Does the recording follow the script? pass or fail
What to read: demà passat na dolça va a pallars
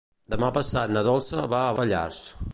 pass